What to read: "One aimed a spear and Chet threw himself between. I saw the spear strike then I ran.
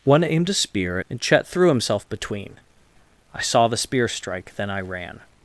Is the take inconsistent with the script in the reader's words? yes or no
no